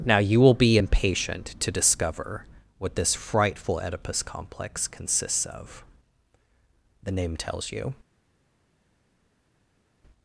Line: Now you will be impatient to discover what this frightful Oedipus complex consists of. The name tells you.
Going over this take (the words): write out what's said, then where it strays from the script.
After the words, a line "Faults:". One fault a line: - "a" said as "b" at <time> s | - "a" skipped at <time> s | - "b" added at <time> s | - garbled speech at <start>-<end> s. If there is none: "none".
Now you will be impatient to discover what this frightful Oedipus complex consists of. The name tells you.
Faults:
none